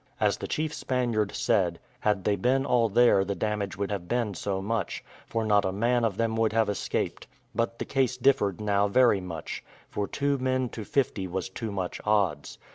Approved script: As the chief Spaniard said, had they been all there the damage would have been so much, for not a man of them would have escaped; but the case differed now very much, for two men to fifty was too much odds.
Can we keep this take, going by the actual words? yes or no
yes